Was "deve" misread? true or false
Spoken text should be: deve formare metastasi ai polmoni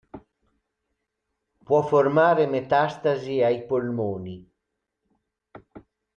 true